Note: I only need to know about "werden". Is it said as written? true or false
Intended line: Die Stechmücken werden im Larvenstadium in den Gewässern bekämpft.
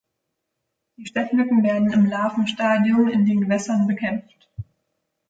true